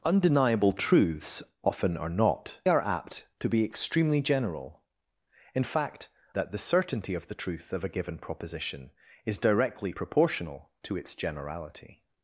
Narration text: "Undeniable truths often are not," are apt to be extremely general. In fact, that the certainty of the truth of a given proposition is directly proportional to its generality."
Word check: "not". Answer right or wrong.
right